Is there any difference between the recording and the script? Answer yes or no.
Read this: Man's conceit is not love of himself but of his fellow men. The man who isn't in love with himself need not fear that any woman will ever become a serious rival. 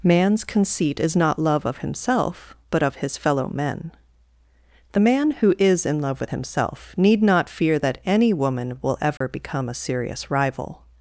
yes